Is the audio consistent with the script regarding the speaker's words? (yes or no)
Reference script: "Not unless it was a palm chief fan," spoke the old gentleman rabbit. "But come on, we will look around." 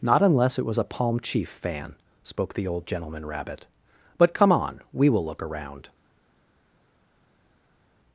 yes